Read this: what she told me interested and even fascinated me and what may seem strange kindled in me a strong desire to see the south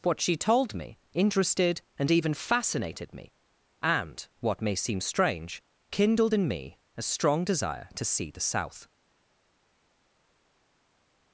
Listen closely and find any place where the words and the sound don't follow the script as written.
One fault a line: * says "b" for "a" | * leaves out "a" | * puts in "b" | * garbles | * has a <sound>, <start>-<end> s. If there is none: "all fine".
all fine